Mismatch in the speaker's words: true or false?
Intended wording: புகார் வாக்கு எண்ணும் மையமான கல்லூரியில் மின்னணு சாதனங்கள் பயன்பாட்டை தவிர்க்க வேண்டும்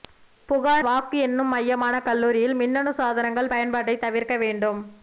false